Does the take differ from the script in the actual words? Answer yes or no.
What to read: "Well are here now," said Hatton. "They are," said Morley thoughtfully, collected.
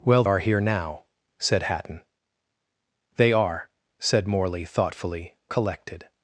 no